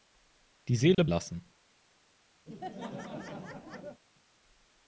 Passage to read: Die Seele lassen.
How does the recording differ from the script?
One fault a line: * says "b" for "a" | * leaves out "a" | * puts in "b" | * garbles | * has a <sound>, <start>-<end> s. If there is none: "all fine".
* has a dropout, 0.9-1.0 s
* has a laugh, 2.5-4.0 s